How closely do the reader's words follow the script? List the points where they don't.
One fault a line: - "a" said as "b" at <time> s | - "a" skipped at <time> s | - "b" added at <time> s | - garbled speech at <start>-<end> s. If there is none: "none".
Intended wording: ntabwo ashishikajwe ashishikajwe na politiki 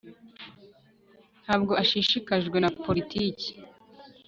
- "ashishikajwe" skipped at 2.6 s